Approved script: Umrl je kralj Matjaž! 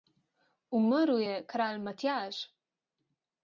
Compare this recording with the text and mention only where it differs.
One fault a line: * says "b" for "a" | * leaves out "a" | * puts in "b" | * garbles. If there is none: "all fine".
all fine